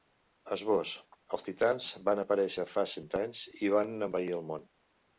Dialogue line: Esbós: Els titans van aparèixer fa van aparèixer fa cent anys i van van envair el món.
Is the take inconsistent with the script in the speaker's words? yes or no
yes